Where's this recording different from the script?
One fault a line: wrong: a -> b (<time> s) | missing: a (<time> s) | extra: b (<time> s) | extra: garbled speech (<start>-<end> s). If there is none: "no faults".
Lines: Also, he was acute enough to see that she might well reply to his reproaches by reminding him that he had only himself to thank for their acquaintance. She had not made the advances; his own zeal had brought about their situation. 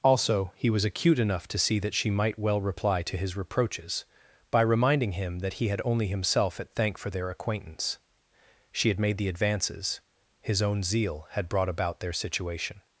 wrong: to -> at (6.6 s)
missing: not (9.0 s)